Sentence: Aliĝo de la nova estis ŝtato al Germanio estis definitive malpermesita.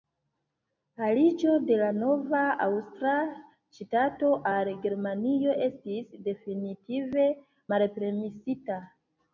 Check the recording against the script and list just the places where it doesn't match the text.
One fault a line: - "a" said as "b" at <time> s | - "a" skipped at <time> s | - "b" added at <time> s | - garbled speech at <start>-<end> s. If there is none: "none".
- "estis" said as "aŭstra" at 2.7 s